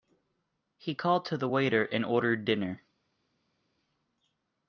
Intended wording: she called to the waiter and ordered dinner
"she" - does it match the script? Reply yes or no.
no